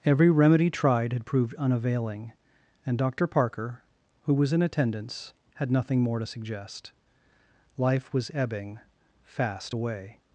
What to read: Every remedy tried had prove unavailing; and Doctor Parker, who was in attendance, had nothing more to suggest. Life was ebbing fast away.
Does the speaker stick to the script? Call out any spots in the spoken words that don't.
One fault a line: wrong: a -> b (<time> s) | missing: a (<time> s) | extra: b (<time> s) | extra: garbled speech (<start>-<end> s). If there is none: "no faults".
wrong: prove -> proved (1.3 s)